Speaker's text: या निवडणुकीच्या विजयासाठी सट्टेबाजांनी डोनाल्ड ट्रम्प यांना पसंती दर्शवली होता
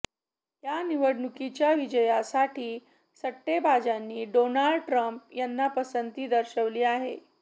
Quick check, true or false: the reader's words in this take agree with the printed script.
false